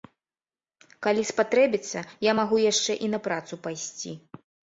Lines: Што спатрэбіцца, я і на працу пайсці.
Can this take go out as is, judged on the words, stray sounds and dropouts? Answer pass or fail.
fail